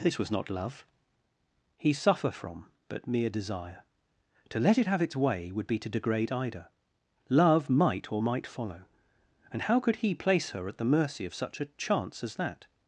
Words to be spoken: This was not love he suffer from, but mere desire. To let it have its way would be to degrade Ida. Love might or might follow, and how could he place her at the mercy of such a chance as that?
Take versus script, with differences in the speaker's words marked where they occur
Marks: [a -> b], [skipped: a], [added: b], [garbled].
This was not love he suffer from, but mere desire. To let it have its way would be to degrade Ida. Love might or might follow, and how could he place her at the mercy of such a chance as that?